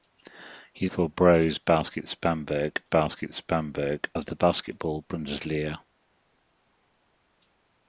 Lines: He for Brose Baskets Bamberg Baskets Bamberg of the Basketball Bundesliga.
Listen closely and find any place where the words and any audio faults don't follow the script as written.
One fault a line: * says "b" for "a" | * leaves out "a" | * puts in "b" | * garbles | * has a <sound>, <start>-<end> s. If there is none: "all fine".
all fine